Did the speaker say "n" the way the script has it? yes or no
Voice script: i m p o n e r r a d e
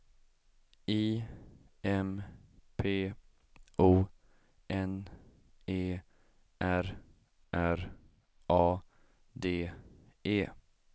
yes